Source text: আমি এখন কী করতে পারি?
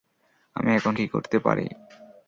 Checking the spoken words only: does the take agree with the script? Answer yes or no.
yes